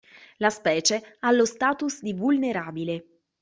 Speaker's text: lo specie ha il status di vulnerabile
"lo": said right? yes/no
no